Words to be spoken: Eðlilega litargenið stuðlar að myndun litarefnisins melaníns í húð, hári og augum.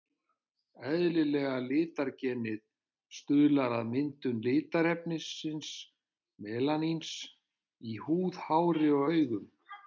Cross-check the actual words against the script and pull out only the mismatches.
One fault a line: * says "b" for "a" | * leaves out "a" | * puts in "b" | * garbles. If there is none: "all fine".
all fine